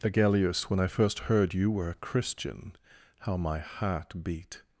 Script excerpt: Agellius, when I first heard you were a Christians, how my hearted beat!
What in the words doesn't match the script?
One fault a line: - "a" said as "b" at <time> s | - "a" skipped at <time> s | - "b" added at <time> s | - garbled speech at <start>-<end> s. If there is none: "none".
- "Christians" said as "Christian" at 1.9 s
- "hearted" said as "heart" at 3.6 s